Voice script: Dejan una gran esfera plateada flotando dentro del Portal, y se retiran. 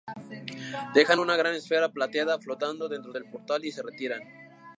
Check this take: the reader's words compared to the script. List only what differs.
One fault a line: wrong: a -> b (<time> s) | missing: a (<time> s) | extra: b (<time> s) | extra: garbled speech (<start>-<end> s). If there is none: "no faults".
no faults